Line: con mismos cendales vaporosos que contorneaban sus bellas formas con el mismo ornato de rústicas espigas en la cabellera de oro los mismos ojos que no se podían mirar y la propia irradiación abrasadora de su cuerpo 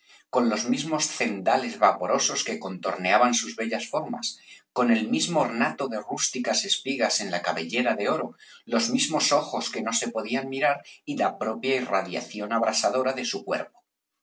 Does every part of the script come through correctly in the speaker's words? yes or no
no